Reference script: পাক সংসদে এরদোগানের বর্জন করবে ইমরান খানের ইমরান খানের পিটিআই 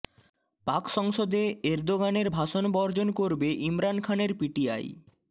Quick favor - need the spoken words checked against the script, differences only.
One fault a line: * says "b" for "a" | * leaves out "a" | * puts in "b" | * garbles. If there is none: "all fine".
* puts in "ভাষণ"
* leaves out "ইমরান খানের"